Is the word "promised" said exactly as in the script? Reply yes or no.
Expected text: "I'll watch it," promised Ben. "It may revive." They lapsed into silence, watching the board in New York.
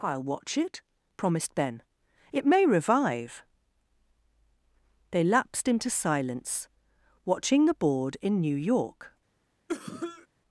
yes